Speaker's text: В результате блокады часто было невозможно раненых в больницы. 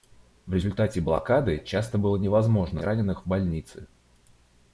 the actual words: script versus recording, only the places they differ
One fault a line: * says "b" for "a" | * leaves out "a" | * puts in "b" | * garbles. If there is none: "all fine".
all fine